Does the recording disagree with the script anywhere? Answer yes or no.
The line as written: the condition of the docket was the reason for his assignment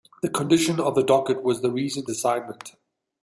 yes